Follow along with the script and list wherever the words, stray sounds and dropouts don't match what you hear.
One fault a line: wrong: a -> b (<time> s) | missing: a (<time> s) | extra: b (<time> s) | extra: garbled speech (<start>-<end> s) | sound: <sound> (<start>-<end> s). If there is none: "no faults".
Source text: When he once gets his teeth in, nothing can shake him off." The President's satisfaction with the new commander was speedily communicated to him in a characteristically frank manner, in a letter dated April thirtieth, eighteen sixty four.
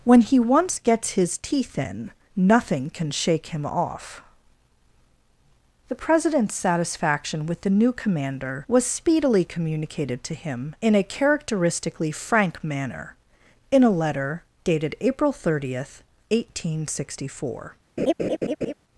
sound: laugh (18.0-18.7 s)